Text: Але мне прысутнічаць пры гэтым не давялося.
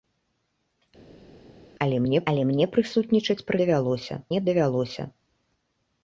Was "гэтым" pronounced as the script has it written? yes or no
no